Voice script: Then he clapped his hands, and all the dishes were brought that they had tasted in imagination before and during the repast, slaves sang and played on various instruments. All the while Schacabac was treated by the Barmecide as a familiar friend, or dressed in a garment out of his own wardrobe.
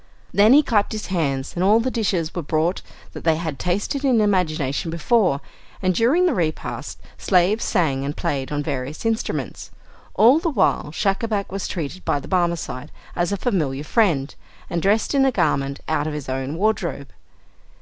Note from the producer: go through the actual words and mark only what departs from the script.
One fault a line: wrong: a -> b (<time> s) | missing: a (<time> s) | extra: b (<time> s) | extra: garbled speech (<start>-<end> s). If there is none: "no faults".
wrong: or -> and (14.7 s)